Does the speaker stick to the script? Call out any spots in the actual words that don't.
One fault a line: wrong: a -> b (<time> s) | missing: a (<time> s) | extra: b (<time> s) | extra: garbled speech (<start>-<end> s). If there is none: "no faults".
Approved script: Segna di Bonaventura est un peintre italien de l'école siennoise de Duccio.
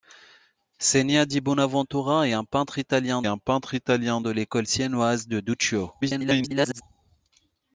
extra: un peintre italien (3.3 s)
extra: garbled speech (6.0-6.8 s)